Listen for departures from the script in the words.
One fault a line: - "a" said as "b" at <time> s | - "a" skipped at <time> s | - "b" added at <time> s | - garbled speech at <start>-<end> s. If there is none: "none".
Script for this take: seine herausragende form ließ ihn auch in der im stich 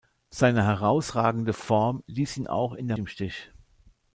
none